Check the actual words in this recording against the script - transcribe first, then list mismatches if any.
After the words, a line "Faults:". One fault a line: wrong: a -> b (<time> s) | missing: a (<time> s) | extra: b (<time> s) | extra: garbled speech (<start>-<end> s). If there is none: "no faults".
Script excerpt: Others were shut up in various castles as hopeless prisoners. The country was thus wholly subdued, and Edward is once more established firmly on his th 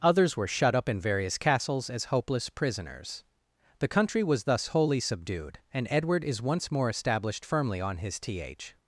Others were shut up in various castles as hopeless prisoners. The country was thus wholly subdued, and Edward is once more established firmly on his th
Faults:
no faults